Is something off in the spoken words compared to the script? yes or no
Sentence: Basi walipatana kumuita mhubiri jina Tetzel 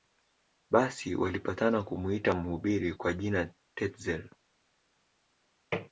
yes